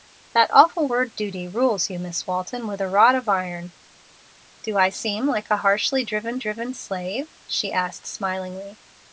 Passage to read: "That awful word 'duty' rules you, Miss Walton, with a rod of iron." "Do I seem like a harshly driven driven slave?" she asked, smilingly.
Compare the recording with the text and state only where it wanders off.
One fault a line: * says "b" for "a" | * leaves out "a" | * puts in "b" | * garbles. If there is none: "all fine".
all fine